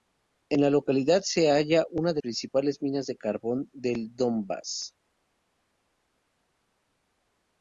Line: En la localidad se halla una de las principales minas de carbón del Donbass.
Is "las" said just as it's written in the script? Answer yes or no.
no